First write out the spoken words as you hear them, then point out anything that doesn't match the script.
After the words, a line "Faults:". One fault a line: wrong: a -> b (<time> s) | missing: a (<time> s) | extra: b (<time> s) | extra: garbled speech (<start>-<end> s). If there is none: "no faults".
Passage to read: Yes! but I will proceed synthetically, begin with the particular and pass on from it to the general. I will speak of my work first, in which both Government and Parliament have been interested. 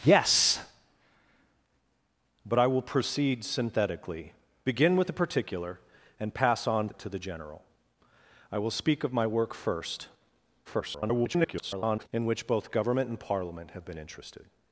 Yes! but I will proceed synthetically, begin with the particular and pass on it to the general. I will speak of my work first, [garbled] in which both Government and Parliament have been interested.
Faults:
missing: from (6.9 s)
extra: garbled speech (10.6-12.1 s)